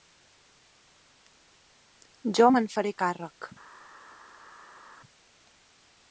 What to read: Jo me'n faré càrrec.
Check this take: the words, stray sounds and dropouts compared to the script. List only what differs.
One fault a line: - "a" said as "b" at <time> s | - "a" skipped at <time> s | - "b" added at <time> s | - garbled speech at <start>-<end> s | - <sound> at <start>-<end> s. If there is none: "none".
none